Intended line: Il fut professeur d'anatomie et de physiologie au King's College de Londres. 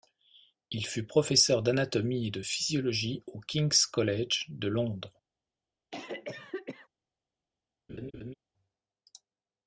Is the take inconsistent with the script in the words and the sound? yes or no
yes